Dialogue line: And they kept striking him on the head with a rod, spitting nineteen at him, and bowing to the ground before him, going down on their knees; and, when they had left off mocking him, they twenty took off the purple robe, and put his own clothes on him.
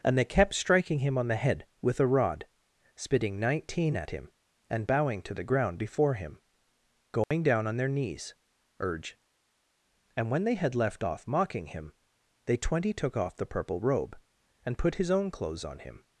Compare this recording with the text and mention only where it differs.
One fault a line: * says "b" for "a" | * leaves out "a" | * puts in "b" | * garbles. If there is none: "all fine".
* puts in "urge"